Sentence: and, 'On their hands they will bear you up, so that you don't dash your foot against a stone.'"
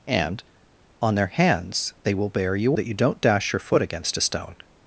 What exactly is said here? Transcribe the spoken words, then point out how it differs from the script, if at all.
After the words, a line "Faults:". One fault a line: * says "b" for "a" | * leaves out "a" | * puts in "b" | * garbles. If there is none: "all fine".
and, 'On their hands they will bear you that you don't dash your foot against a stone.'"
Faults:
* leaves out "up so"